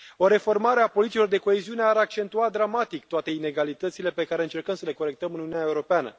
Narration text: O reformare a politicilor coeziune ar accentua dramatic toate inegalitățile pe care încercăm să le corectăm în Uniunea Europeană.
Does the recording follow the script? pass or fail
fail